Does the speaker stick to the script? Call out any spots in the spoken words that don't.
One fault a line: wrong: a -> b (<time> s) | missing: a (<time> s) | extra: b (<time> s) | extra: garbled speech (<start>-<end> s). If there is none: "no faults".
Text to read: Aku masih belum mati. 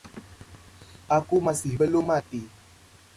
no faults